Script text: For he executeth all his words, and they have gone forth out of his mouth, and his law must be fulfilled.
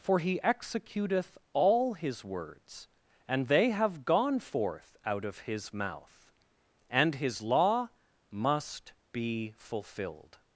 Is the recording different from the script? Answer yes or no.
no